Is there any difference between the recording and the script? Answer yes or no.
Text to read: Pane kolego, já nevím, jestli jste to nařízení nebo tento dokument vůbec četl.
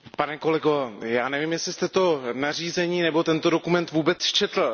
no